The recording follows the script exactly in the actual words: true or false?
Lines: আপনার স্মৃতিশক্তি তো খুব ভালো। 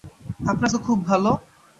false